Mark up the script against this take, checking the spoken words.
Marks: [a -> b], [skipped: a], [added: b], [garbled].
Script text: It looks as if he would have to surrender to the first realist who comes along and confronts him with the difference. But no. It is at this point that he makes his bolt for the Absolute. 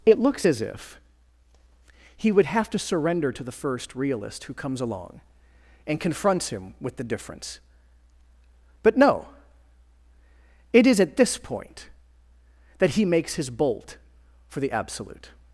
It looks as if he would have to surrender to the first realist who comes along and confronts him with the difference. But no. It is at this point that he makes his bolt for the Absolute.